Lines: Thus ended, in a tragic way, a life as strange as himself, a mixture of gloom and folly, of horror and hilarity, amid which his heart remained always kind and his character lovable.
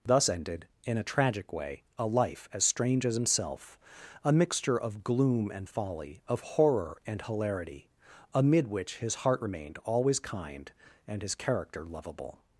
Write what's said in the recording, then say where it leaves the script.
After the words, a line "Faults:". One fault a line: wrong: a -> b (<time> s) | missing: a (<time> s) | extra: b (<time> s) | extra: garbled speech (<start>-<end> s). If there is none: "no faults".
Thus ended, in a tragic way, a life as strange as himself, a mixture of gloom and folly, of horror and hilarity, amid which his heart remained always kind and his character lovable.
Faults:
no faults